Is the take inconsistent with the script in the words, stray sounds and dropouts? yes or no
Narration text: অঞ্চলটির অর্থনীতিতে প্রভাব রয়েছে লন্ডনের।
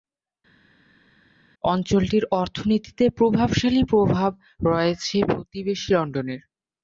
yes